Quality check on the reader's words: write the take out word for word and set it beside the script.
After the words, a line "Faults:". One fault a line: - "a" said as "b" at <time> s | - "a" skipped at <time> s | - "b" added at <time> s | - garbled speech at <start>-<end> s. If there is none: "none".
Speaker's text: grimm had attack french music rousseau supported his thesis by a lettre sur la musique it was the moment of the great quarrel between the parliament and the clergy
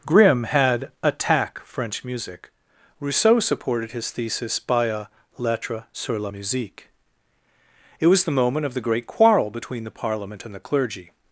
grimm had attack french music rousseau supported his thesis by a lettre sur la musique it was the moment of the great quarrel between the parliament and the clergy
Faults:
none